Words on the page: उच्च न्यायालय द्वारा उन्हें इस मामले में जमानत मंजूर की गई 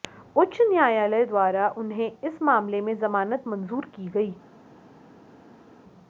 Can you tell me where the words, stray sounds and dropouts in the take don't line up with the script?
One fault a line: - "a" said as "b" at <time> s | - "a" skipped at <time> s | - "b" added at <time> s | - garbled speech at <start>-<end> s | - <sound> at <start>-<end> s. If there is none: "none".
none